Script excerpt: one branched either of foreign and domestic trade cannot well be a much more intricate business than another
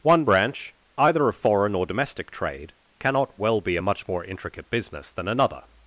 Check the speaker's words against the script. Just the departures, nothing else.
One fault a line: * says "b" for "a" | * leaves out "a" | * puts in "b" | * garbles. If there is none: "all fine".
* says "branch" for "branched"
* says "or" for "and"